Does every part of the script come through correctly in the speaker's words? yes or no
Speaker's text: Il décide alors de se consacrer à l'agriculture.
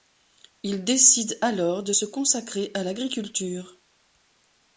yes